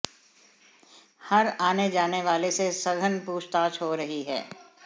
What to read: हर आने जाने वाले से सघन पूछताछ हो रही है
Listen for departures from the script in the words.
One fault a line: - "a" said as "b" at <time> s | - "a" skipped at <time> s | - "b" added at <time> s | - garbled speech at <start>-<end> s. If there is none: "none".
none